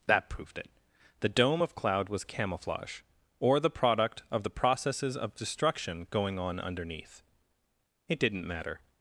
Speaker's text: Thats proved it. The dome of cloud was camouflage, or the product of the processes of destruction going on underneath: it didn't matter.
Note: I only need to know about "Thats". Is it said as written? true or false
false